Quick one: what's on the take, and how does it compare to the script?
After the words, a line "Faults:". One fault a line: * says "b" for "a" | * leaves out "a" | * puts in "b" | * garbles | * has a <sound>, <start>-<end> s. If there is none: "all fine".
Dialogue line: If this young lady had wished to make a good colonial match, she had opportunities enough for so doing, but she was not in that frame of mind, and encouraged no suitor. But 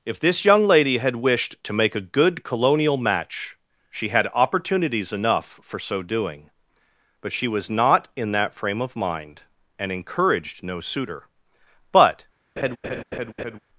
If this young lady had wished to make a good colonial match, she had opportunities enough for so doing, but she was not in that frame of mind, and encouraged no suitor. But
Faults:
* has a laugh, 12.6-13.6 s